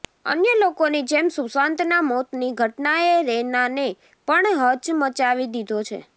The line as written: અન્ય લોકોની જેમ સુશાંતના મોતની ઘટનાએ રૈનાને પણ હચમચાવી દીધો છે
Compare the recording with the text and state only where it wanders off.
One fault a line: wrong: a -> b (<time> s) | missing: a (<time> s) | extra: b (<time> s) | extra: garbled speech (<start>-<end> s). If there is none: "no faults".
no faults